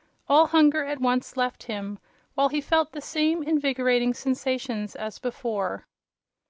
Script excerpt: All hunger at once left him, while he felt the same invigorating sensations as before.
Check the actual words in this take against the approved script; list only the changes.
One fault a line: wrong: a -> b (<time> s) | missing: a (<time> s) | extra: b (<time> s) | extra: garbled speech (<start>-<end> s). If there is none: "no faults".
no faults